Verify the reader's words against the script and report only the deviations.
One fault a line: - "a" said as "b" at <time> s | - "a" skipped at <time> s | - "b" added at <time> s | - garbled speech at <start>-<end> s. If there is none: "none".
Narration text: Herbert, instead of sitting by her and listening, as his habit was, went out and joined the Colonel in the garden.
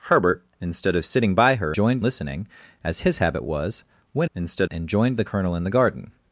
- "and" said as "joined" at 1.7 s
- "out" said as "instead" at 4.3 s